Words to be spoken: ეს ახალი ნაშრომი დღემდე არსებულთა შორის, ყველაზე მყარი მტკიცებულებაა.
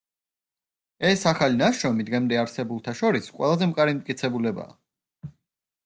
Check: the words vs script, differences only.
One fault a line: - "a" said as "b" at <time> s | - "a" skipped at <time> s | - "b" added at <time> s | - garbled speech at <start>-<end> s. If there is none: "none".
none